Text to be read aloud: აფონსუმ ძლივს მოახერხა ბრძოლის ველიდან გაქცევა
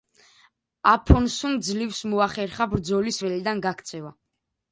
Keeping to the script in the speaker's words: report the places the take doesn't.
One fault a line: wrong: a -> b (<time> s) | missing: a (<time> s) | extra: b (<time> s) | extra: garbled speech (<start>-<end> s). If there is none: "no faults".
no faults